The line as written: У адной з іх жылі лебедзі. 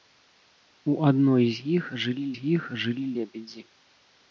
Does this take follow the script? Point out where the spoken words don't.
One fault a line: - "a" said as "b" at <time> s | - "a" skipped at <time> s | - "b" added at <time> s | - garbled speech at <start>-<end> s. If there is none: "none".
- "з іх жылі" added at 2.4 s